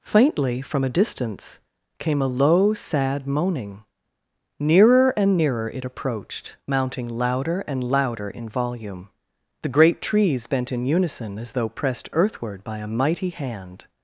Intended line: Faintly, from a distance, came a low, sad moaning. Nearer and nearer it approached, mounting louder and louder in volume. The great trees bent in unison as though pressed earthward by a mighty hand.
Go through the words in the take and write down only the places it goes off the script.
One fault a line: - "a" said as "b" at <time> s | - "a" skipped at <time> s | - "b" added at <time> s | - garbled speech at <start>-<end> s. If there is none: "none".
none